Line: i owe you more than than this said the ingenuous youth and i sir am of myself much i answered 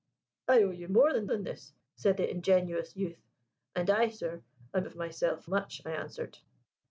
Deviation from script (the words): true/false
false